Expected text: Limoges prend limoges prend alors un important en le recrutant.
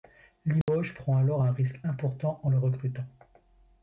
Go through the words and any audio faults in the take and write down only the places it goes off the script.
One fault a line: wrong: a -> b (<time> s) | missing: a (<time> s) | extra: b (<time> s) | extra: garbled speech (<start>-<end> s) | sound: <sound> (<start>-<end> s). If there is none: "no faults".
sound: dropout (0.6-0.7 s)
missing: limoges prend (1.2 s)
extra: risque (1.5 s)